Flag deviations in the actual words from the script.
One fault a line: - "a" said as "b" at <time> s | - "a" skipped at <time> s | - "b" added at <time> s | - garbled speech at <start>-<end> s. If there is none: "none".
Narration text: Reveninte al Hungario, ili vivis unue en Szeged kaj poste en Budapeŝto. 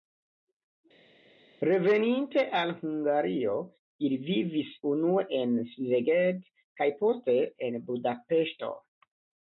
none